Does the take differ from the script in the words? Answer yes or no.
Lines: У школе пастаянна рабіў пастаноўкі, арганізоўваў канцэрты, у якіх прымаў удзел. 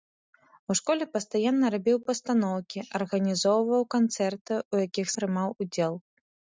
no